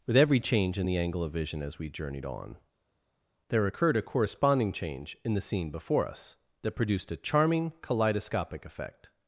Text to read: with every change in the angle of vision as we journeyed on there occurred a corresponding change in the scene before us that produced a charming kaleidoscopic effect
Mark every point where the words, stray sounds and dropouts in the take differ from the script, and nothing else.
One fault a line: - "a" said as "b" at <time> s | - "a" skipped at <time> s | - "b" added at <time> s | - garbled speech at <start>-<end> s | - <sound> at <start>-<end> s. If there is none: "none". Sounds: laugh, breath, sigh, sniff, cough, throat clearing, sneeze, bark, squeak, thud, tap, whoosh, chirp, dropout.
none